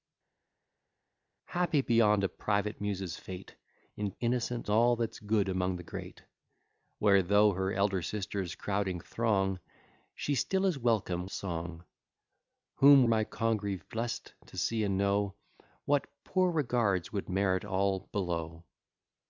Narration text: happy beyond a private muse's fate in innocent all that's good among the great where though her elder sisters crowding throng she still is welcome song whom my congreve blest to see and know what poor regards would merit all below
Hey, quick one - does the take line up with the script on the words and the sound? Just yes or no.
yes